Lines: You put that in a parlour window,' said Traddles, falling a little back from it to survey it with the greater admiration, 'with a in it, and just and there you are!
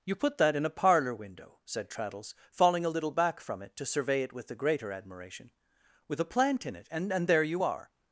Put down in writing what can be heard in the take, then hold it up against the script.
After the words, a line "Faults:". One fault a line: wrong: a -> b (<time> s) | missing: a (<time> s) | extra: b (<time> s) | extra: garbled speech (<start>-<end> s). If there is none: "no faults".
You put that in a parlour window,' said Traddles, falling a little back from it to survey it with the greater admiration, 'with a plant in it, and and there you are!
Faults:
extra: plant (6.2 s)
missing: just (7.1 s)